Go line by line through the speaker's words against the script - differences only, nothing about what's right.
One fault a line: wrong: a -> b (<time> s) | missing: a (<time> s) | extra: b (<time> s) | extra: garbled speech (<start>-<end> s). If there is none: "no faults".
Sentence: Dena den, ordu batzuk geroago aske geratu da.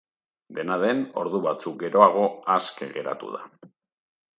no faults